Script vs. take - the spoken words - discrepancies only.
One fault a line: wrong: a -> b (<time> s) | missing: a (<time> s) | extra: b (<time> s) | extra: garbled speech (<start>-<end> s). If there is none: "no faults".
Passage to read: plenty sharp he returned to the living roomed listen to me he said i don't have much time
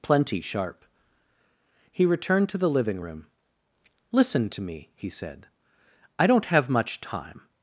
wrong: roomed -> room (3.0 s)